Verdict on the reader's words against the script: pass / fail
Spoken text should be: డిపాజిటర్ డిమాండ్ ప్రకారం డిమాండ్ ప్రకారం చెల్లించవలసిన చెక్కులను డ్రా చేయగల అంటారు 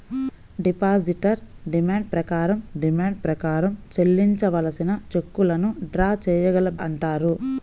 pass